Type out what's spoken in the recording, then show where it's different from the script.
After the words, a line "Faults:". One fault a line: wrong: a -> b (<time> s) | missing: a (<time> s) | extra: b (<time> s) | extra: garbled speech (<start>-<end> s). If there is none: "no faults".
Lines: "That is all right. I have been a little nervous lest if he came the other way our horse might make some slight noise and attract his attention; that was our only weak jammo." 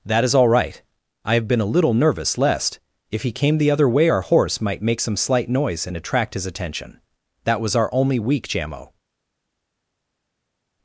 "That is all right. I have been a little nervous lest if he came the other way our horse might make some slight noise and attract his attention; that was our only weak jammo."
Faults:
no faults